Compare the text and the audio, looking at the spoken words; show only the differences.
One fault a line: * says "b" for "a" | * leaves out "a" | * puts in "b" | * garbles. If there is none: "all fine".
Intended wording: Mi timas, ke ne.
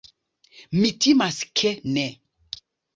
all fine